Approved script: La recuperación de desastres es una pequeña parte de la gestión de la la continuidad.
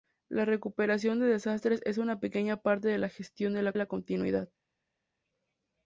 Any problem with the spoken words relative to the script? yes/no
no